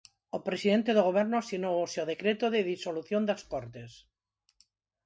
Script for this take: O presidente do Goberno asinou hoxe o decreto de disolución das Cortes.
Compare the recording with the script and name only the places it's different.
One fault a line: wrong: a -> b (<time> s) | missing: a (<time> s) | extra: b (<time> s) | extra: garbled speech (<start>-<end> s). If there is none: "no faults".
no faults